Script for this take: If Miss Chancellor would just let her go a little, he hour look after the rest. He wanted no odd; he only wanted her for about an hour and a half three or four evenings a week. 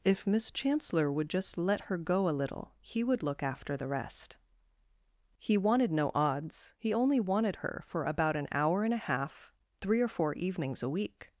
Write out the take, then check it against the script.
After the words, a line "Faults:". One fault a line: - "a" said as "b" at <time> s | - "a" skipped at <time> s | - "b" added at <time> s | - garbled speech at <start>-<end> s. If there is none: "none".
If Miss Chancellor would just let her go a little, he would look after the rest. He wanted no odds; he only wanted her for about an hour and a half three or four evenings a week.
Faults:
- "hour" said as "would" at 3.0 s
- "odd" said as "odds" at 6.2 s